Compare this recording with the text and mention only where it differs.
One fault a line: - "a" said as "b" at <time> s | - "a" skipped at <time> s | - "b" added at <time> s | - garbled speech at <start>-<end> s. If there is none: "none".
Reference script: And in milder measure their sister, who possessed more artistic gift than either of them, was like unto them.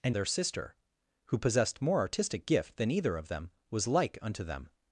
- "in milder measure" skipped at 0.1 s